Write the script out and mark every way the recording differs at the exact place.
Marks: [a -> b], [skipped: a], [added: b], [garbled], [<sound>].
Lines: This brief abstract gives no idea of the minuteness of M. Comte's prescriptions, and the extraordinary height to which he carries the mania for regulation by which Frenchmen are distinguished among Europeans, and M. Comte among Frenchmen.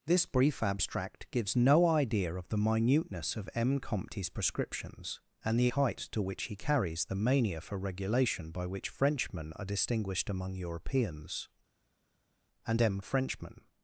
This brief abstract gives no idea of the minuteness of M. Comte's prescriptions, and the [skipped: extraordinary] height to which he carries the mania for regulation by which Frenchmen are distinguished among Europeans, and M. [skipped: Comte among] Frenchmen.